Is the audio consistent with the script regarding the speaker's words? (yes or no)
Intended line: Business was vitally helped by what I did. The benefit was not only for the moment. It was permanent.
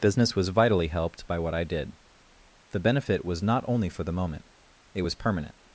yes